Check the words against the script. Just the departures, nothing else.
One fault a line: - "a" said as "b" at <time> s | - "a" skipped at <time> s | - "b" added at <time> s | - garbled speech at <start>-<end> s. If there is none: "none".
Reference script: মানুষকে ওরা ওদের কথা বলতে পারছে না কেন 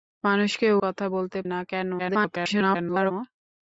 - "ওরা ওদের" skipped at 0.7 s
- "পারছে" skipped at 1.4 s
- garbled speech at 2.0-3.1 s